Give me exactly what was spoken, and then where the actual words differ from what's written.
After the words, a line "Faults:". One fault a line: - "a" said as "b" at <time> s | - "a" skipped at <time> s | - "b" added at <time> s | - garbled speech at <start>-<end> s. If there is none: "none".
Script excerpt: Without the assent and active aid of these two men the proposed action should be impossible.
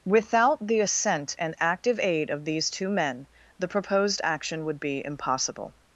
Without the assent and active aid of these two men the proposed action would be impossible.
Faults:
- "should" said as "would" at 4.7 s